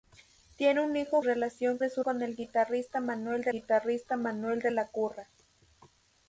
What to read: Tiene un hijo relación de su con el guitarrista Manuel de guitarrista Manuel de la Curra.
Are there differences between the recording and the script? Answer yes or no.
no